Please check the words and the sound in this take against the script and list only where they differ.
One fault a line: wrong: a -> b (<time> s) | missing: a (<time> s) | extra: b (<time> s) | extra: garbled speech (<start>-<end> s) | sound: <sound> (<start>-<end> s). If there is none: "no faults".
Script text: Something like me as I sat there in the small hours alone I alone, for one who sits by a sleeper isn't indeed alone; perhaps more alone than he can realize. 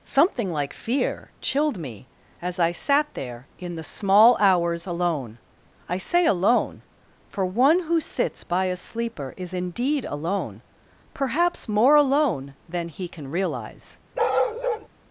extra: fear chilled (0.7 s)
extra: say (6.0 s)
wrong: isn't -> is (9.4 s)
sound: bark (14.1-14.9 s)